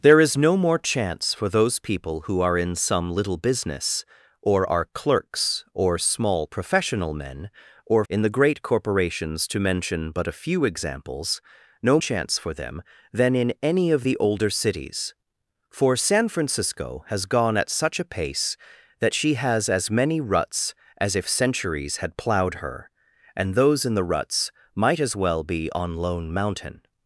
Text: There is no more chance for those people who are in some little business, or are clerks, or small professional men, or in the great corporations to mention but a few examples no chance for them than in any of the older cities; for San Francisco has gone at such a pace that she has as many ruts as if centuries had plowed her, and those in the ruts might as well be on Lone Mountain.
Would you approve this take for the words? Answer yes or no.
yes